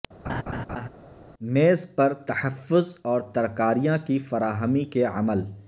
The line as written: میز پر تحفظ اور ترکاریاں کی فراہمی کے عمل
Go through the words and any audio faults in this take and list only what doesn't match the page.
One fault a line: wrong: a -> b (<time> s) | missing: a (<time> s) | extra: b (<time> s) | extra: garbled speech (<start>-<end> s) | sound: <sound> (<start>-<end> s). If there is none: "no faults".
sound: laugh (0.2-0.9 s)